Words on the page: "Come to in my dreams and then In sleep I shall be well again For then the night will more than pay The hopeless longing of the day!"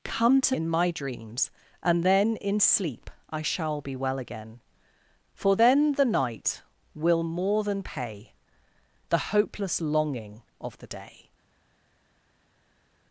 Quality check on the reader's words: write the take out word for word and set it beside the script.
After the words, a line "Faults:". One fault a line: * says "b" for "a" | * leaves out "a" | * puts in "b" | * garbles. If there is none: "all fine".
"Come to in my dreams and then In sleep I shall be well again For then the night will more than pay The hopeless longing of the day!"
Faults:
all fine